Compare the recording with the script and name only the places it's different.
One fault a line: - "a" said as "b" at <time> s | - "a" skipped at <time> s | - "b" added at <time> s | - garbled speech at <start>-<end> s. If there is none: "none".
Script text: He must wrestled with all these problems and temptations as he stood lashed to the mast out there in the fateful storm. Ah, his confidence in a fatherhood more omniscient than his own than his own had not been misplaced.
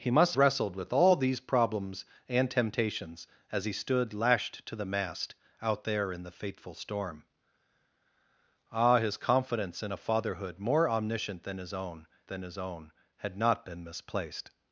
none